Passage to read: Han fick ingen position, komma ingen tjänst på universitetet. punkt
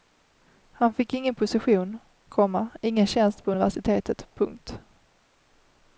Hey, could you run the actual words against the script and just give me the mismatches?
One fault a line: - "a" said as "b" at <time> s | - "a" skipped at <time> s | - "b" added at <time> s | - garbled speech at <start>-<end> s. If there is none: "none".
none